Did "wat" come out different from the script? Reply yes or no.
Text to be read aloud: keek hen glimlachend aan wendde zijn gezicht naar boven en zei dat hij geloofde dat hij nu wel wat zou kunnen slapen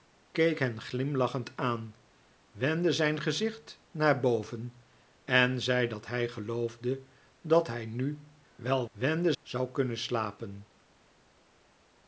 yes